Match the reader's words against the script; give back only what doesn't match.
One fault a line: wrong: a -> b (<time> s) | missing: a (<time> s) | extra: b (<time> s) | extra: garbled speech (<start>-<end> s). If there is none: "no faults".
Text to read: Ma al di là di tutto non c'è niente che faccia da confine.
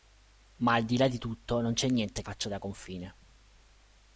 missing: che (2.2 s)